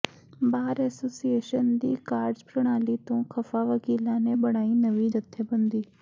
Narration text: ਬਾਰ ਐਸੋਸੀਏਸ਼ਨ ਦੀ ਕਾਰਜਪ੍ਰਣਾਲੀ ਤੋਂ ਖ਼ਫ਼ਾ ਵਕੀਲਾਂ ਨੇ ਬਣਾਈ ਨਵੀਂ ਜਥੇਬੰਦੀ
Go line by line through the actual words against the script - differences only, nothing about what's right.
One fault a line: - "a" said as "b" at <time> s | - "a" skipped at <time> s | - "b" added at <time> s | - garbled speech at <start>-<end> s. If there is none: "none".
none